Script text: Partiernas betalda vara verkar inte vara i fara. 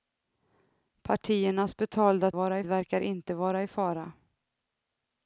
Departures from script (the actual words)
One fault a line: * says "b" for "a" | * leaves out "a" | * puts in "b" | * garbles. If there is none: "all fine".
all fine